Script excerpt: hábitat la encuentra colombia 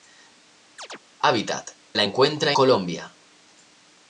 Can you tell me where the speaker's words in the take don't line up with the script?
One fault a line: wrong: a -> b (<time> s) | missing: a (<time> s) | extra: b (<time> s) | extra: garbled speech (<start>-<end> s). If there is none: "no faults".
no faults